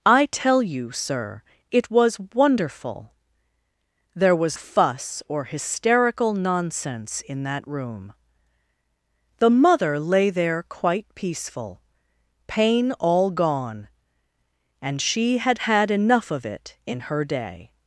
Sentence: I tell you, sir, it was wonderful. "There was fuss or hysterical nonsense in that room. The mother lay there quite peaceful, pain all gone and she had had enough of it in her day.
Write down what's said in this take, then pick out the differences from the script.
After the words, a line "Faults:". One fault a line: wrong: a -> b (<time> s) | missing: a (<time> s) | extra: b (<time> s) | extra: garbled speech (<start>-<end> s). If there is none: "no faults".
I tell you, sir, it was wonderful. "There was fuss or hysterical nonsense in that room. The mother lay there quite peaceful, pain all gone and she had had enough of it in her day.
Faults:
no faults